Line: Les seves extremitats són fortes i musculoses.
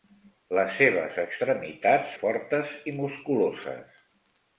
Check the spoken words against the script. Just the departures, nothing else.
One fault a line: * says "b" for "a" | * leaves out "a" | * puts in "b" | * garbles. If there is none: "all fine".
* leaves out "són"